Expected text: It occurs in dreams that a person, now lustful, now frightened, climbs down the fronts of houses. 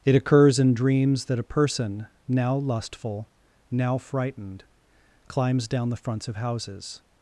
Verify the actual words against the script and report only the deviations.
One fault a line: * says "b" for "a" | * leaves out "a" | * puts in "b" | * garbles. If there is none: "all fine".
all fine